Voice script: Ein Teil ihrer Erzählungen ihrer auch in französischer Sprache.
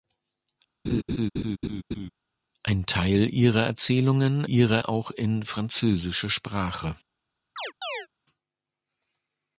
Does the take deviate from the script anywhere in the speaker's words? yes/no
no